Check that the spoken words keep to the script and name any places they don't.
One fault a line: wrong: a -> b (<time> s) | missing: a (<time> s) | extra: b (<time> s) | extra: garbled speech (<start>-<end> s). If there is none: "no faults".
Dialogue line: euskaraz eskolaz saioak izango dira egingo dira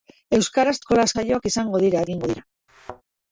no faults